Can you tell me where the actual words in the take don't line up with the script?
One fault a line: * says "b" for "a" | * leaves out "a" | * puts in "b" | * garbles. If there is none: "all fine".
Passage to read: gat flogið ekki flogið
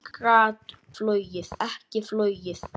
all fine